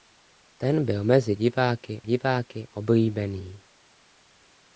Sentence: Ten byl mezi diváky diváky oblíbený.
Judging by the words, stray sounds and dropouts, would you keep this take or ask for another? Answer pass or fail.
pass